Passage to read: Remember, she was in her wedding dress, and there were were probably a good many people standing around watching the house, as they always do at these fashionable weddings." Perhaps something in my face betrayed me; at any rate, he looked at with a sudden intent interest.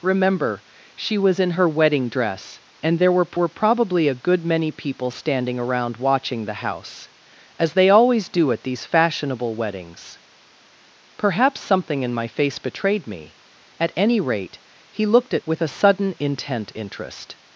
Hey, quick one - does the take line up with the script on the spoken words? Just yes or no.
yes